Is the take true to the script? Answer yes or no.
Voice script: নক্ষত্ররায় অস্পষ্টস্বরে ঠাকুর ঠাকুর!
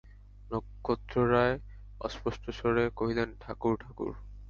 no